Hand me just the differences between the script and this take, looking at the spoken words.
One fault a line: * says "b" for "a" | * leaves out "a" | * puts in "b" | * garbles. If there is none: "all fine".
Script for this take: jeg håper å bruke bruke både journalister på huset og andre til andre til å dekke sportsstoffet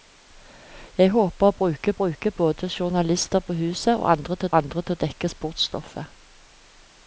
all fine